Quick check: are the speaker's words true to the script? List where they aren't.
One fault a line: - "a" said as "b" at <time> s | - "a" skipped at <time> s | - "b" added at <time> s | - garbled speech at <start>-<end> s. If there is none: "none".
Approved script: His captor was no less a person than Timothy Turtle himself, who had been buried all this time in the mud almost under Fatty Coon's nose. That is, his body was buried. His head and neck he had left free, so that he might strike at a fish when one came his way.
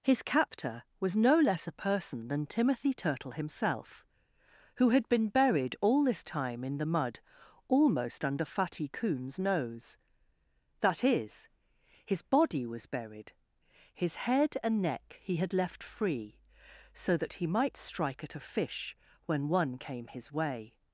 none